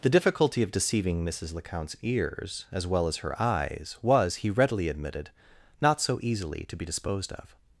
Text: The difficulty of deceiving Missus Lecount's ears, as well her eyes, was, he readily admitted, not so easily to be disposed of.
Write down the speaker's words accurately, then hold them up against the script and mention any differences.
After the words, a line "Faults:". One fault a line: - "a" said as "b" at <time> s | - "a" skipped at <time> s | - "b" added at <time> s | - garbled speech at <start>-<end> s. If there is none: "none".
The difficulty of deceiving Missus Lecount's ears, as well as her eyes, was, he readily admitted, not so easily to be disposed of.
Faults:
- "as" added at 3.1 s